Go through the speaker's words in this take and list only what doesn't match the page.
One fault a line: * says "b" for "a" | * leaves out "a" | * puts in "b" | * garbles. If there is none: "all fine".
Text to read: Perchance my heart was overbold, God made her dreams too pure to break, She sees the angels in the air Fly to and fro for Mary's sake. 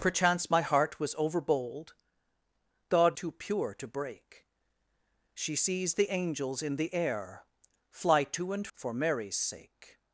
* leaves out "made her dreams"
* leaves out "fro"